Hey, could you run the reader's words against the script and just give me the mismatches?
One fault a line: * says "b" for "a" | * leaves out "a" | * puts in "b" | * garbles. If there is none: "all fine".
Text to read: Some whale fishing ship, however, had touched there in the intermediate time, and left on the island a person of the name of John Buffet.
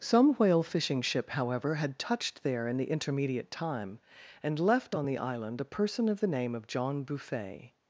all fine